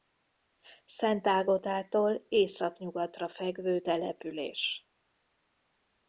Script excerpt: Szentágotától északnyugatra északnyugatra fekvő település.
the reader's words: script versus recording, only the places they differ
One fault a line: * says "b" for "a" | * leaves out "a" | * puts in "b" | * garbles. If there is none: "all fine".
* leaves out "északnyugatra"